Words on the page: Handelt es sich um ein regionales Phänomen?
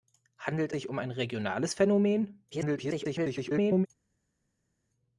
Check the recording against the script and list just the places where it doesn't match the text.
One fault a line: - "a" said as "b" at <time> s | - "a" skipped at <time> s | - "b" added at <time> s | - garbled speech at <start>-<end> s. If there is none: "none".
- "es" skipped at 0.7 s
- garbled speech at 2.5-3.9 s